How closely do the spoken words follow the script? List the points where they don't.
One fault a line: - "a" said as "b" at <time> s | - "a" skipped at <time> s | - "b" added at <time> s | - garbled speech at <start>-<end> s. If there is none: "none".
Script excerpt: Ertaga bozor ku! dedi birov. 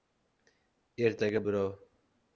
- "bozor ku dedi" skipped at 1.4 s